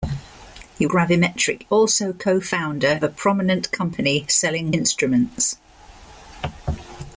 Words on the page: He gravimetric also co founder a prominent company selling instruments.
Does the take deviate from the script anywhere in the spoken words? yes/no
no